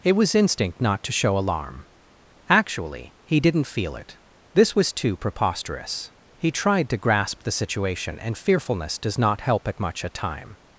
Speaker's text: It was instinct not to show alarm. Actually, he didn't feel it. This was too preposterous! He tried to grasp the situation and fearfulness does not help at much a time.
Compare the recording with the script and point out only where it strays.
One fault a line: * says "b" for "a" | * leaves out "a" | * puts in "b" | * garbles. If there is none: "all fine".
all fine